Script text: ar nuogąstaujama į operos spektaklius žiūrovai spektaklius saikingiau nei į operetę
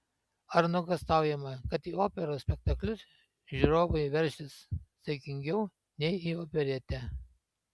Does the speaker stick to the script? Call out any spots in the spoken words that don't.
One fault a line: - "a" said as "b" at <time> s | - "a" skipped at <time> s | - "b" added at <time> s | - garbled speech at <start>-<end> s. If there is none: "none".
- "kad" added at 1.7 s
- "spektaklius" said as "veršis" at 4.2 s